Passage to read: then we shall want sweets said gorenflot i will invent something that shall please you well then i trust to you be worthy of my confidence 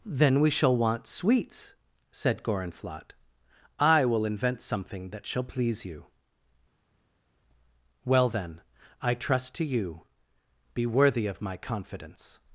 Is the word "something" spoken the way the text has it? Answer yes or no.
yes